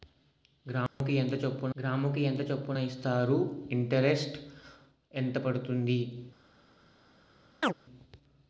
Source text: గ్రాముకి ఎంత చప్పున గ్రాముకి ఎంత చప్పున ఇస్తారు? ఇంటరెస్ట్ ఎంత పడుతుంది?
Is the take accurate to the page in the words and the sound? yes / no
no